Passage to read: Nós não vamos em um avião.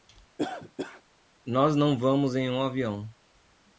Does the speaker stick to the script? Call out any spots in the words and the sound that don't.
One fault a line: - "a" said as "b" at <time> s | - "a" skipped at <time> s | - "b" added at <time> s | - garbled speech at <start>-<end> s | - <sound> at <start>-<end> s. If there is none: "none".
- cough at 0.4-1.0 s